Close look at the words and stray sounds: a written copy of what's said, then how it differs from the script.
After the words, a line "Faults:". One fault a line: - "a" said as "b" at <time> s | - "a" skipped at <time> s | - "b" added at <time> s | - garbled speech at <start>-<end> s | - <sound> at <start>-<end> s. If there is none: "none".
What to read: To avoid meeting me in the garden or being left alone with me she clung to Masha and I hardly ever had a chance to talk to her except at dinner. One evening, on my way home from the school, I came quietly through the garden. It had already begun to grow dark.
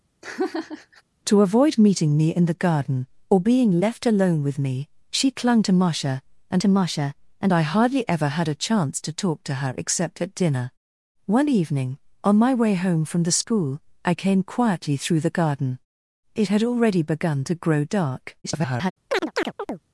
To avoid meeting me in the garden or being left alone with me she clung to Masha and to Masha and I hardly ever had a chance to talk to her except at dinner. One evening, on my way home from the school, I came quietly through the garden. It had already begun to grow dark. [garbled]
Faults:
- laugh at 0.2-1.0 s
- "to Masha and" added at 6.6 s
- garbled speech at 18.4-18.9 s
- chirp at 19.1-19.8 s